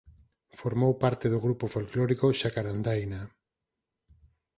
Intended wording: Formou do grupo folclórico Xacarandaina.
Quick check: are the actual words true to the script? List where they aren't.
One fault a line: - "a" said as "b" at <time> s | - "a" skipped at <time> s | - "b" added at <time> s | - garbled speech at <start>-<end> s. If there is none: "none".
- "parte" added at 1.0 s